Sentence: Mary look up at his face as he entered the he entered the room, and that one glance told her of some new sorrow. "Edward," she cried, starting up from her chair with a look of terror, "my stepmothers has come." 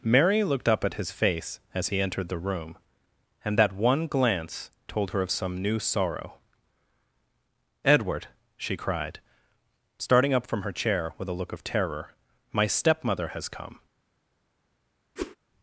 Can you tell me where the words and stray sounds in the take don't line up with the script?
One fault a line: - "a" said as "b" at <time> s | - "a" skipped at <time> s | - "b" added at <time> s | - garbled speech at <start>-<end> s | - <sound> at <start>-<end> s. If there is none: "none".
- "look" said as "looked" at 0.4 s
- "he entered the" skipped at 2.4 s
- "stepmothers" said as "stepmother" at 12.7 s
- whoosh at 15.2-15.4 s